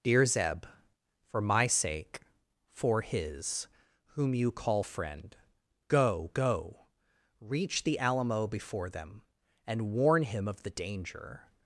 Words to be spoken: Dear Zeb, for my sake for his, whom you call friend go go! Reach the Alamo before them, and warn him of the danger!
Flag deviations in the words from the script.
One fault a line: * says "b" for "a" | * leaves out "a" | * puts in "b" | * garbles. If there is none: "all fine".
all fine